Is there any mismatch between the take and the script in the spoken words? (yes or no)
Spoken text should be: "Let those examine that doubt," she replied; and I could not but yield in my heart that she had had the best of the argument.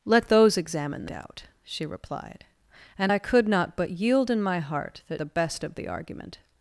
yes